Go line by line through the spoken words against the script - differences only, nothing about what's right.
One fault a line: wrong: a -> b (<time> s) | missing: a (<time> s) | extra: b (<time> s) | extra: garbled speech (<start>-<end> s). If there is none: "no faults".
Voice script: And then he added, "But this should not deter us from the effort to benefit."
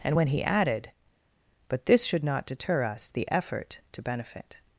wrong: then -> when (0.1 s)
missing: from (3.1 s)